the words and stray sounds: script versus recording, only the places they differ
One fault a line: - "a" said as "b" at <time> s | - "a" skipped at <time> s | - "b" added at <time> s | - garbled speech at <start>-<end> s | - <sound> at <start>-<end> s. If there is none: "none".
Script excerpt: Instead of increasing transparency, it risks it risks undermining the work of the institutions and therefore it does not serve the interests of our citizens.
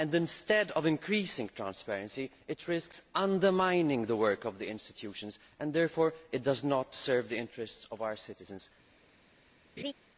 - "it risks" skipped at 3.0 s
- laugh at 9.8-9.9 s